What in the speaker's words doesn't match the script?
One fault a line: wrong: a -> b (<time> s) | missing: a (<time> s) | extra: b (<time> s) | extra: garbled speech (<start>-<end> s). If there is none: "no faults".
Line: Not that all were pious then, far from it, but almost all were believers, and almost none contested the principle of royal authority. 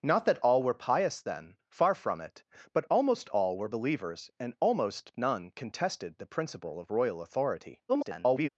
extra: garbled speech (7.9-8.5 s)